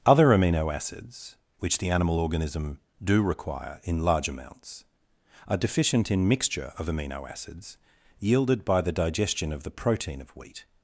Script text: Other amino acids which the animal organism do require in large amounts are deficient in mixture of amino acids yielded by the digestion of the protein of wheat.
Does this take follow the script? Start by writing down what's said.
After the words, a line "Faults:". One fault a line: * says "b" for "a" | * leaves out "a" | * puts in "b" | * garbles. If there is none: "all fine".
Other amino acids which the animal organism do require in large amounts are deficient in mixture of amino acids yielded by the digestion of the protein of wheat.
Faults:
all fine